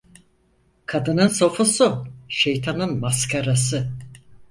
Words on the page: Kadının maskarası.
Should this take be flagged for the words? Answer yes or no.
yes